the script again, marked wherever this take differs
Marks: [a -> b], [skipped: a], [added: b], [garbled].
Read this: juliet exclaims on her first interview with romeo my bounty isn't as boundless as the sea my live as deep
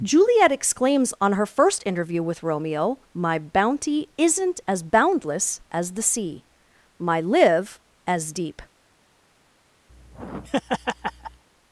juliet exclaims on her first interview with romeo my bounty isn't as boundless as the sea my live as deep